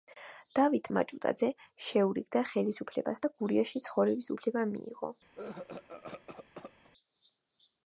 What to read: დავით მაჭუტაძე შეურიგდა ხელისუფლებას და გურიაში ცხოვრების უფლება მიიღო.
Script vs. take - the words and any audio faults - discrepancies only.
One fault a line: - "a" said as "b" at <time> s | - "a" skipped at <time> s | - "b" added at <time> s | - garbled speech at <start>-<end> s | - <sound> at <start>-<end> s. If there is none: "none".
- cough at 5.4-6.9 s